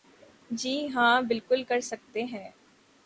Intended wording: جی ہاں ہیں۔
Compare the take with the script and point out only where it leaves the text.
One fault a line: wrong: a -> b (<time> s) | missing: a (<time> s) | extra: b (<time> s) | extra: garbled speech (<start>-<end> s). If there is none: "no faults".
extra: بالکل کر سکتے (1.2 s)